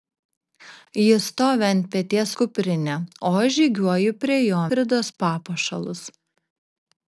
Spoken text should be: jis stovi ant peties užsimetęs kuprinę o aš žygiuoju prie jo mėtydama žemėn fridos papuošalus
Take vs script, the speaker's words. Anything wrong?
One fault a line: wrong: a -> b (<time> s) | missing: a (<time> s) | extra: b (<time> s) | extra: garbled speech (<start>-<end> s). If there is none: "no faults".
missing: užsimetęs (2.3 s)
missing: mėtydama žemėn (4.6 s)